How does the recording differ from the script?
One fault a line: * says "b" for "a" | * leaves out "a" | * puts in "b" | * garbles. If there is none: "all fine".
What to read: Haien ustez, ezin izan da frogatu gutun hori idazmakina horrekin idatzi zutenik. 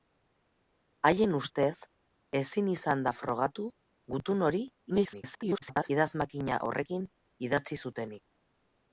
* garbles